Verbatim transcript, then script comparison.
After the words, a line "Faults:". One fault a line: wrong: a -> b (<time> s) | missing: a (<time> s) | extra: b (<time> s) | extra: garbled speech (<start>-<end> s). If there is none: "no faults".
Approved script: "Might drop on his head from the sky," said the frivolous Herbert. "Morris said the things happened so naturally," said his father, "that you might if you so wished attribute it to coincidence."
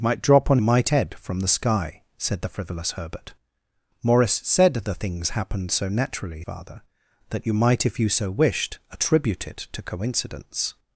"Might drop on might head from the sky," said the frivolous Herbert. "Morris said the things happened so naturally," father, "that you might if you so wished attribute it to coincidence."
Faults:
wrong: his -> might (0.6 s)
missing: said his (6.4 s)